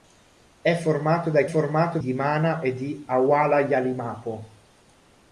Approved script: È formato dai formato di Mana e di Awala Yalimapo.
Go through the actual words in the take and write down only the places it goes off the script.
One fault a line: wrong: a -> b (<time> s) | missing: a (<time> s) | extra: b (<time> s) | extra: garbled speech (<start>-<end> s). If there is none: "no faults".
no faults